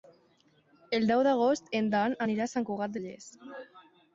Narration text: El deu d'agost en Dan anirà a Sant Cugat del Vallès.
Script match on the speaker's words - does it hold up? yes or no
no